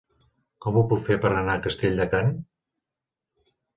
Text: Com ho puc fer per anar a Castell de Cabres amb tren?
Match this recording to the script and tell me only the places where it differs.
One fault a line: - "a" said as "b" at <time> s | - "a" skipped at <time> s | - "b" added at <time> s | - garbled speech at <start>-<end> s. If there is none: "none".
- "Cabres amb" skipped at 2.1 s